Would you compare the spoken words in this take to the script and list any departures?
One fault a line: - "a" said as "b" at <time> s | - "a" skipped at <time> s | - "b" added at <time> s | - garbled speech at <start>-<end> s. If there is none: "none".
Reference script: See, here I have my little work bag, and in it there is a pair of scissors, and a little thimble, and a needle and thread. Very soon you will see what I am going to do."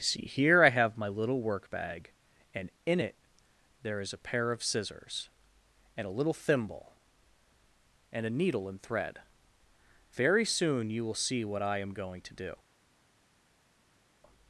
none